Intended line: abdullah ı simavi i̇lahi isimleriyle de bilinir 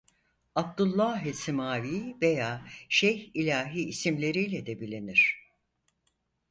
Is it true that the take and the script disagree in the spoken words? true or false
true